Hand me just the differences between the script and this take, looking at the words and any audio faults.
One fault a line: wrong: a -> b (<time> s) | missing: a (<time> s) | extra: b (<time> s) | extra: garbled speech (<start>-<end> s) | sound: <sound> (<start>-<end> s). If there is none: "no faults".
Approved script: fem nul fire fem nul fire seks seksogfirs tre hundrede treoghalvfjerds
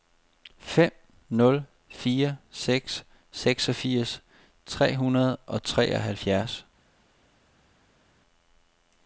missing: fem nul fire (2.4 s)
extra: og (5.4 s)